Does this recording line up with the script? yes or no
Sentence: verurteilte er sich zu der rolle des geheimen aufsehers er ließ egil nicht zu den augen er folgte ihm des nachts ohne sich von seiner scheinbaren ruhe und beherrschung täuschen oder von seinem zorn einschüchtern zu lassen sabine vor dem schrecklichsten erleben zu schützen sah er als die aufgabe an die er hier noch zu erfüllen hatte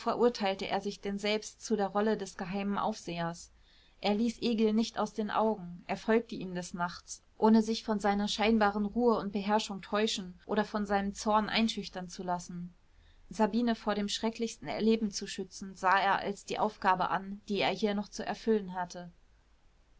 no